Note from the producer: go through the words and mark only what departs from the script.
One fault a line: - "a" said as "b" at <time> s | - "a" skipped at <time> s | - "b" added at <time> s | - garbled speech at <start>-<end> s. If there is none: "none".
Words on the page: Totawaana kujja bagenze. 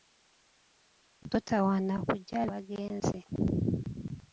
none